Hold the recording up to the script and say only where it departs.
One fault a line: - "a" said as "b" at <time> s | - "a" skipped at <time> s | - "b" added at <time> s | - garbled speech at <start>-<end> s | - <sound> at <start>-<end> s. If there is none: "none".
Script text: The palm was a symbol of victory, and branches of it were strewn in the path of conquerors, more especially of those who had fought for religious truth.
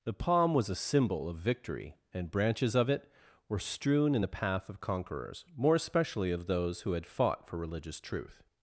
none